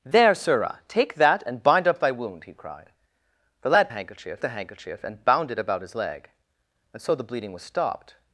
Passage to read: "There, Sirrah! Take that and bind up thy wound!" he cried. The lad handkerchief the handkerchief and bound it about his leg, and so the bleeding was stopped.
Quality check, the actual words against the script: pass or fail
pass